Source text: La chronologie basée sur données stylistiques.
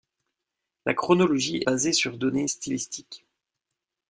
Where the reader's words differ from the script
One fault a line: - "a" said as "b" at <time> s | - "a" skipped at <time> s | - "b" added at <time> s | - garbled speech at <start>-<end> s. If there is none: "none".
none